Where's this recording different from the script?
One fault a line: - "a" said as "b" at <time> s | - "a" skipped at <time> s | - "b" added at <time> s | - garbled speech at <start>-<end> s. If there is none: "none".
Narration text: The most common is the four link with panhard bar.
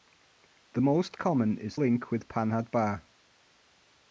- "the four" skipped at 1.8 s